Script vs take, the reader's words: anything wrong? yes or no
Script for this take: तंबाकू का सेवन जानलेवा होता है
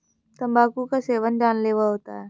no